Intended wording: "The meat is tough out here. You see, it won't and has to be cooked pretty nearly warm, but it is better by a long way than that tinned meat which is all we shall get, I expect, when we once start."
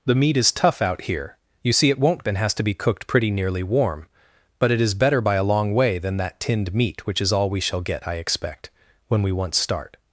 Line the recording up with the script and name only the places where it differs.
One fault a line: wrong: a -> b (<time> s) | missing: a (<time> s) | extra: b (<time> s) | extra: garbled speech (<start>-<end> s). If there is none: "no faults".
no faults